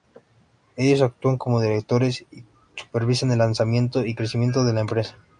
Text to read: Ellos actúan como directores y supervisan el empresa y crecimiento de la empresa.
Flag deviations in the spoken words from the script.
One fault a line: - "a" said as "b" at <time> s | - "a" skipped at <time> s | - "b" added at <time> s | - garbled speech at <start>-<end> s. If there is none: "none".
- "empresa" said as "lanzamiento" at 3.4 s